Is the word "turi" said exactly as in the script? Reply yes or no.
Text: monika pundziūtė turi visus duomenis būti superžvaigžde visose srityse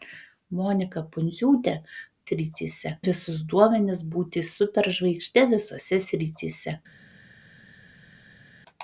no